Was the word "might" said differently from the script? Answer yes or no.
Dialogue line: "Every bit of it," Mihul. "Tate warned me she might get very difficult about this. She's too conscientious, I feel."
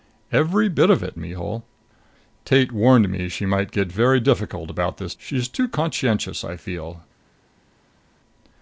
no